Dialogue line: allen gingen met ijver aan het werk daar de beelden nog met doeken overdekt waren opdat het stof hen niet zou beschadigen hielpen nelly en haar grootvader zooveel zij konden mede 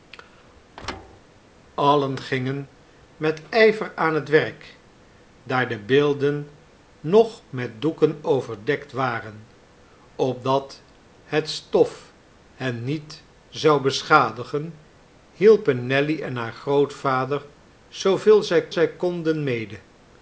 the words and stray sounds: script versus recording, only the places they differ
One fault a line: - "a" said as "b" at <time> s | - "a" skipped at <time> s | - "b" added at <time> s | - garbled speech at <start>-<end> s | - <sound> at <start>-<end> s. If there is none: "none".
- thud at 0.8-1.2 s
- "zij" added at 18.7 s